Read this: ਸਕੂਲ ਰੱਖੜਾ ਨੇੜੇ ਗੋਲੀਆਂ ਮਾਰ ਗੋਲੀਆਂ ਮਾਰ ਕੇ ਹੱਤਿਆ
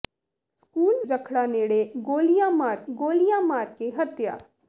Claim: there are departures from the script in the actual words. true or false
false